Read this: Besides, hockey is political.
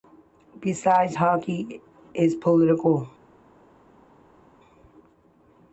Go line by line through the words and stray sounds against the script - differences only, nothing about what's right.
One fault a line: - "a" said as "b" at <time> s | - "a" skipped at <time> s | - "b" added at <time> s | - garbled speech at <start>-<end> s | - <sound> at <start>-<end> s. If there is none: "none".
none